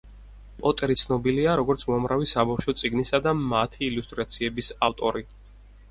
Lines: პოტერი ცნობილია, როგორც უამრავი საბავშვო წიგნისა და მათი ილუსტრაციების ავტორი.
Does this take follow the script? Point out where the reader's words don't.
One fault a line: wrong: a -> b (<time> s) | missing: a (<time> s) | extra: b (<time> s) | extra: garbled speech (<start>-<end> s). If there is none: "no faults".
no faults